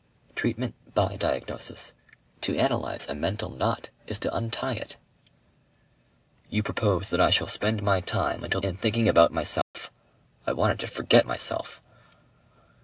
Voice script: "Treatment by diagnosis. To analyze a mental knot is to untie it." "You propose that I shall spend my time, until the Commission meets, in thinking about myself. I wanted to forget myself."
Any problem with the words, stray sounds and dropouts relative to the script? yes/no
yes